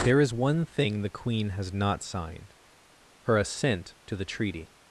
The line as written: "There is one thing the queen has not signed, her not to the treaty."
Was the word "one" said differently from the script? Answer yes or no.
no